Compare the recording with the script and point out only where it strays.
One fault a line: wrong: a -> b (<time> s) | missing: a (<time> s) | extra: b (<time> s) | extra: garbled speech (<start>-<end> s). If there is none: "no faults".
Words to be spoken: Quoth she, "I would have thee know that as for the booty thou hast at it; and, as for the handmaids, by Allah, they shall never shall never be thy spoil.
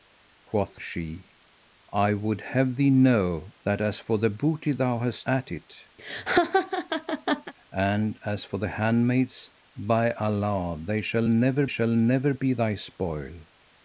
no faults